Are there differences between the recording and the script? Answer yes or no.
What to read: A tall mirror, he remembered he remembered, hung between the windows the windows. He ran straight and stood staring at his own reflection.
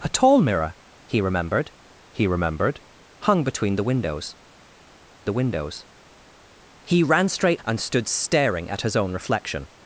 no